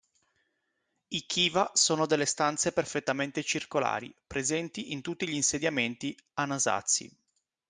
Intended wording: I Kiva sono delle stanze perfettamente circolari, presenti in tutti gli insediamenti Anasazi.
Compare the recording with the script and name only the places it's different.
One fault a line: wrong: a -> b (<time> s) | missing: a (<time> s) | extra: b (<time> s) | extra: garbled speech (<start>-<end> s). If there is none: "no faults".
no faults